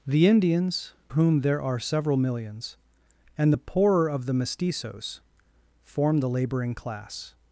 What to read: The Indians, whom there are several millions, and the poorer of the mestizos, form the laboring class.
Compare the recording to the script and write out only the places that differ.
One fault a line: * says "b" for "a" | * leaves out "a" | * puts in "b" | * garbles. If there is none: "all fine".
all fine